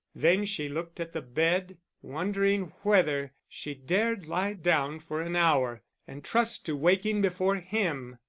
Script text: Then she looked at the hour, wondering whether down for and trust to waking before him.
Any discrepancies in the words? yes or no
yes